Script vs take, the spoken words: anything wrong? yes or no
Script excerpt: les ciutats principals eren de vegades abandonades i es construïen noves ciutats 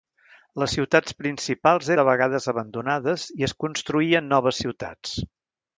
yes